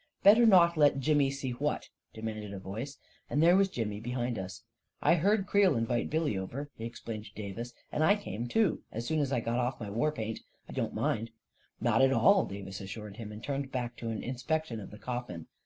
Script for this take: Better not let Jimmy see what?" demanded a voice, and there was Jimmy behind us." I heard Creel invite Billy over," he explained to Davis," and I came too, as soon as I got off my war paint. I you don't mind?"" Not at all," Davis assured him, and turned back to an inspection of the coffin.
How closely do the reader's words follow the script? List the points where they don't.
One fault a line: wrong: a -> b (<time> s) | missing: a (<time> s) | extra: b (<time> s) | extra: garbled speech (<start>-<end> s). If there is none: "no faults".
no faults